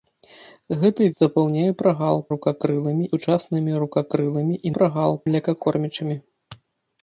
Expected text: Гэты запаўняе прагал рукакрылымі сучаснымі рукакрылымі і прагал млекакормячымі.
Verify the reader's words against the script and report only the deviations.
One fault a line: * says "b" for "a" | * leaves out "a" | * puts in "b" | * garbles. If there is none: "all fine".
all fine